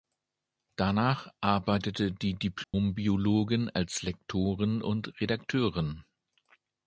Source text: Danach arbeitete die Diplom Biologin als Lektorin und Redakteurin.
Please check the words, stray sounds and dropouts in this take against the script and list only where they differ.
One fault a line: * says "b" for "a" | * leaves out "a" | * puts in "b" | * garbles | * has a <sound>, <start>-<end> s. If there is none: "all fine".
* has a dropout, 2.6-2.7 s